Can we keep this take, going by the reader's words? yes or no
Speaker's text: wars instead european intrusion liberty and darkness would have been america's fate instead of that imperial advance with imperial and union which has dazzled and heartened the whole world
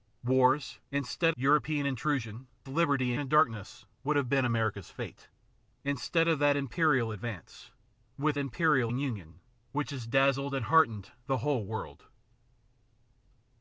yes